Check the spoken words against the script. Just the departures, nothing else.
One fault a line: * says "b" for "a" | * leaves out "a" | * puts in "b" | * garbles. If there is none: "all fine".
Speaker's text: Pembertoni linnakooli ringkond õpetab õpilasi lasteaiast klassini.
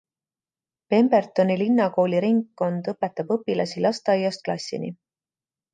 all fine